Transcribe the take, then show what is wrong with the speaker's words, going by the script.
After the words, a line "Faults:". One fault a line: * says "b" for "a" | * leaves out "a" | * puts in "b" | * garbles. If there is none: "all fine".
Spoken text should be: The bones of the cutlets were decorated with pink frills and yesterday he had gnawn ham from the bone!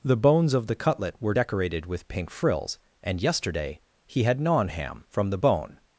The bones of the cutlet were decorated with pink frills and yesterday he had gnawn ham from the bone!
Faults:
* says "cutlet" for "cutlets"